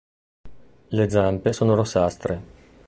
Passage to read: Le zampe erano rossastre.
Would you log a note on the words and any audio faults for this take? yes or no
yes